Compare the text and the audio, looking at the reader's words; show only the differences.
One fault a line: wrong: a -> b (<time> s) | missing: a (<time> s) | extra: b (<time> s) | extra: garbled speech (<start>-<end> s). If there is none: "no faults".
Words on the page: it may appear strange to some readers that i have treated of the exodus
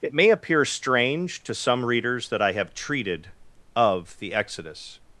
no faults